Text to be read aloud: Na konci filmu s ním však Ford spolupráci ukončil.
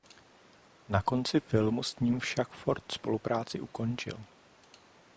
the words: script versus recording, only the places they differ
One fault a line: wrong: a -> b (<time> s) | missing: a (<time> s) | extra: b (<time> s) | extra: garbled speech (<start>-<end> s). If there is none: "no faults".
no faults